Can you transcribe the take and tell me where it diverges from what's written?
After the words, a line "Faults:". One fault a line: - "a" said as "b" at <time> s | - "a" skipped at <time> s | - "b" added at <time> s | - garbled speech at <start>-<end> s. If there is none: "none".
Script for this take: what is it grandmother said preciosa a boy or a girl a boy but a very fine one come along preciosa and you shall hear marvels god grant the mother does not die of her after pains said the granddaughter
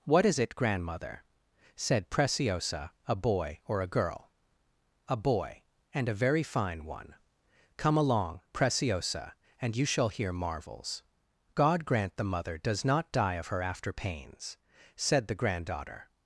what is it grandmother said preciosa a boy or a girl a boy and a very fine one come along preciosa and you shall hear marvels god grant the mother does not die of her after pains said the granddaughter
Faults:
- "but" said as "and" at 5.9 s